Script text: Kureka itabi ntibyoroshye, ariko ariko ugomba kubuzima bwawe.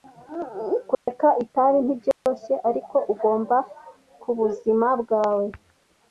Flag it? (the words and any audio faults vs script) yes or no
yes